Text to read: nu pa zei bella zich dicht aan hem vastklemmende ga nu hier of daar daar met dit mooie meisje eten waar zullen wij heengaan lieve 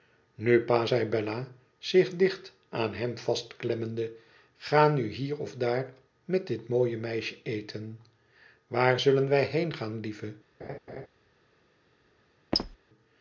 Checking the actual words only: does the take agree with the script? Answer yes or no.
no